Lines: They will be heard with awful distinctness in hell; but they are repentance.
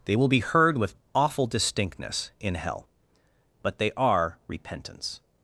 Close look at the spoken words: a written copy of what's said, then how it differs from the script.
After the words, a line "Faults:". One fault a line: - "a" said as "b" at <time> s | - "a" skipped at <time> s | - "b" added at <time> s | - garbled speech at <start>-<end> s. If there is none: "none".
They will be heard with awful distinctness in hell; but they are repentance.
Faults:
none